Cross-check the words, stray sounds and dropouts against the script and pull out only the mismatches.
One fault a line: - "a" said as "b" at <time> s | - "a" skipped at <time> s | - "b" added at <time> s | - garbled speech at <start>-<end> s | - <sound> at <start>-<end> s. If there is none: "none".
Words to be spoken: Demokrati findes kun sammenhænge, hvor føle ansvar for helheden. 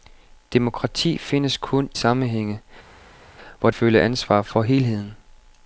none